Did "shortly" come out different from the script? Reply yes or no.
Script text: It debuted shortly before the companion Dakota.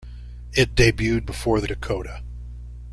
yes